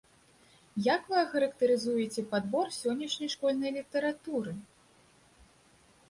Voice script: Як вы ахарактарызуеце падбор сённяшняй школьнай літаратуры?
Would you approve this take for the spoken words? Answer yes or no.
yes